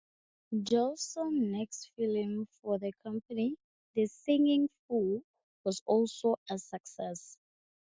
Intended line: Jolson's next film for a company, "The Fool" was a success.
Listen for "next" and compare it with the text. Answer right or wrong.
right